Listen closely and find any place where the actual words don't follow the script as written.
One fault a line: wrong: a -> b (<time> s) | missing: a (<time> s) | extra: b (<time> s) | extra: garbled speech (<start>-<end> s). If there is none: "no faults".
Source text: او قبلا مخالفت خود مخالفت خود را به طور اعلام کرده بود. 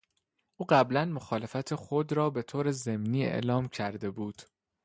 missing: مخالفت خود (2.1 s)
extra: ضمنی (2.7 s)